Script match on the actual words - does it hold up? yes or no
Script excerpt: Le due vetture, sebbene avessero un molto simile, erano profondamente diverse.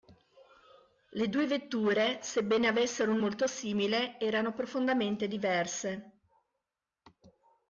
yes